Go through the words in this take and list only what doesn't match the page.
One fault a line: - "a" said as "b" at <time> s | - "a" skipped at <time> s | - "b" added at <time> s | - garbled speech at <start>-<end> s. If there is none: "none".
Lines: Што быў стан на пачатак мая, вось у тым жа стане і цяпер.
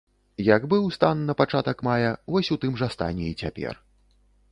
- "Што" said as "Як" at 0.5 s